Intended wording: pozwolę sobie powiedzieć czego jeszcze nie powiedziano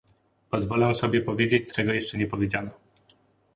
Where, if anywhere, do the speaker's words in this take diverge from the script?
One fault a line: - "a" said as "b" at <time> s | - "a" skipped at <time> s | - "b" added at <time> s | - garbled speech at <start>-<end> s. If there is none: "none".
none